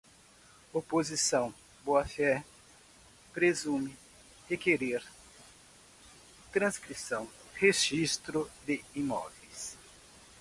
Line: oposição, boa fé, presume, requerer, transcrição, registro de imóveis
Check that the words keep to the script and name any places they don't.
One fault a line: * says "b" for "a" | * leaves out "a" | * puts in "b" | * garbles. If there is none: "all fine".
all fine